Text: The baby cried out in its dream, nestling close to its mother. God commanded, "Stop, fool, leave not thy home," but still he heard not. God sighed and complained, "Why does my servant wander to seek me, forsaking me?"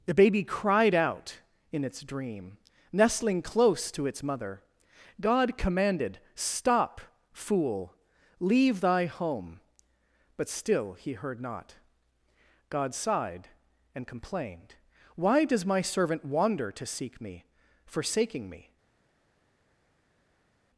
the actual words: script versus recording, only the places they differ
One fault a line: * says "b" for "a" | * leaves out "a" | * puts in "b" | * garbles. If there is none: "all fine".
* leaves out "not"